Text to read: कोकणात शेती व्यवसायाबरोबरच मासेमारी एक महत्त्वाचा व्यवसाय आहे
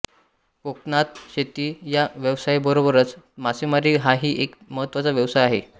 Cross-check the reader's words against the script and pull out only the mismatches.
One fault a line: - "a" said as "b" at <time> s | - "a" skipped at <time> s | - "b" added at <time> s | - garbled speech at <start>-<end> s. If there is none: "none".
- "या" added at 1.9 s
- "हाही" added at 4.0 s